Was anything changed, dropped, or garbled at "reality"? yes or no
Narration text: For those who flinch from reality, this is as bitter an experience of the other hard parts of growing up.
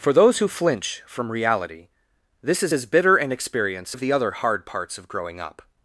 no